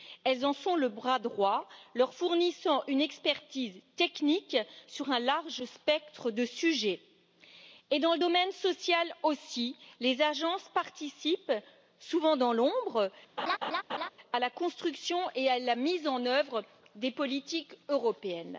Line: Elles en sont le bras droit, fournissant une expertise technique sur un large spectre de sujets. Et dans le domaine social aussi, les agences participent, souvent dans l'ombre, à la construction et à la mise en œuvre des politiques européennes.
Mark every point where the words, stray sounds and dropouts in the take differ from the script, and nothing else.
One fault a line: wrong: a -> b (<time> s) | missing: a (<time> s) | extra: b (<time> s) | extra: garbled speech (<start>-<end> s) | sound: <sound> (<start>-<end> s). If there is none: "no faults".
extra: leur (1.9 s)
sound: laugh (13.4-14.1 s)